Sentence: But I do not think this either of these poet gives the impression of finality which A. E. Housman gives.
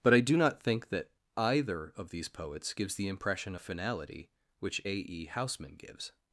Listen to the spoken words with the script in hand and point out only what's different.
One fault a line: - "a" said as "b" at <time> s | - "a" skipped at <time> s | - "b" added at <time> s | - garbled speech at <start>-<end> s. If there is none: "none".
- "this" said as "that" at 0.9 s
- "poet" said as "poets" at 2.3 s